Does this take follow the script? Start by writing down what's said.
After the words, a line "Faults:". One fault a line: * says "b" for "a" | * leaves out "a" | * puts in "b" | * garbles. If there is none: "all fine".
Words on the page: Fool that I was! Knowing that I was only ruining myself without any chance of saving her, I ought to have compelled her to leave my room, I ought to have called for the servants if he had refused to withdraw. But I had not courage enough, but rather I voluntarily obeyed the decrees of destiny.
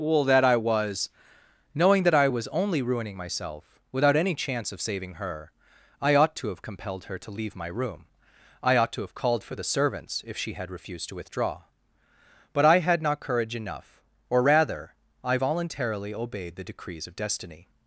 Fool that I was! Knowing that I was only ruining myself without any chance of saving her, I ought to have compelled her to leave my room, I ought to have called for the servants if she had refused to withdraw. But I had not courage enough, or rather I voluntarily obeyed the decrees of destiny.
Faults:
* says "she" for "he"
* says "or" for "but"